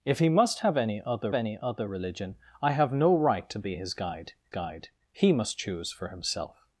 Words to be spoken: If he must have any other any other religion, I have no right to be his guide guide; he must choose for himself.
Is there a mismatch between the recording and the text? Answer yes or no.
no